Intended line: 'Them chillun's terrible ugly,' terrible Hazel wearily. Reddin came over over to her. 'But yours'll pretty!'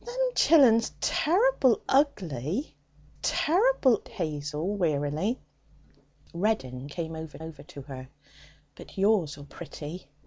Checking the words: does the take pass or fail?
pass